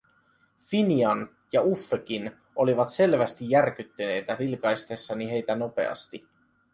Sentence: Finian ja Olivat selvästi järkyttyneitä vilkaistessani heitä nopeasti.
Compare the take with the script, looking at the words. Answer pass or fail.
fail